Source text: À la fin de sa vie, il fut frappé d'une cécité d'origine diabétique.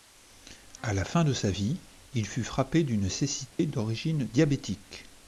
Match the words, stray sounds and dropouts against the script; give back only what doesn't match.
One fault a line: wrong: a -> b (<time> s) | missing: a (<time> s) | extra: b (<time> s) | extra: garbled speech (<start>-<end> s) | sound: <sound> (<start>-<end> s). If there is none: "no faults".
sound: dropout (3.5-3.6 s)